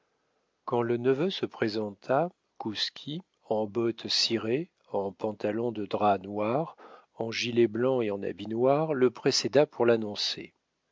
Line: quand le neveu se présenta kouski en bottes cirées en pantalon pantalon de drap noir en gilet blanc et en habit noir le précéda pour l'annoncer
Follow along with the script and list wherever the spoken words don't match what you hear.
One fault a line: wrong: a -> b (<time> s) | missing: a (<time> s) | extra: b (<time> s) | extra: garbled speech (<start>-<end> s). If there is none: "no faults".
missing: pantalon (5.7 s)